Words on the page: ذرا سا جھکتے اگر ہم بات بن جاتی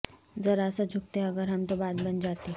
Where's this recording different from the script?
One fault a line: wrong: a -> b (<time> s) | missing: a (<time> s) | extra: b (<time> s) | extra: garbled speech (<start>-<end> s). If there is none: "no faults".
extra: تو (1.6 s)